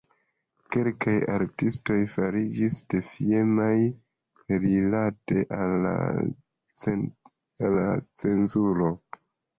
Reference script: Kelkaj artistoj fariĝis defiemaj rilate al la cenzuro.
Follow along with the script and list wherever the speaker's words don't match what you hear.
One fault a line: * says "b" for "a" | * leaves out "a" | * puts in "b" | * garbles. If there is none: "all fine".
all fine